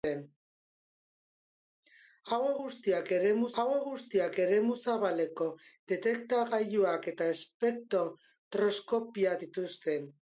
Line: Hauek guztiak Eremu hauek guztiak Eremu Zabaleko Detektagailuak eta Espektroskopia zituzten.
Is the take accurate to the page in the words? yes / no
yes